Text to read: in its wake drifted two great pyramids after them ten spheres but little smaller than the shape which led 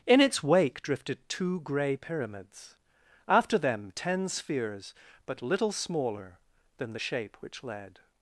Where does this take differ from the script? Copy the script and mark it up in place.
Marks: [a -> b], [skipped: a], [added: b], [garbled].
in its wake drifted two [great -> grey] pyramids after them ten spheres but little smaller than the shape which led